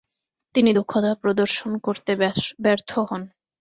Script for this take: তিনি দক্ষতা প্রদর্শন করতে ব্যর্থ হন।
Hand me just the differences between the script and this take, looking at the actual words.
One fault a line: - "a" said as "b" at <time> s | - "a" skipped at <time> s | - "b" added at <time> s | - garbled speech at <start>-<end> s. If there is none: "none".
none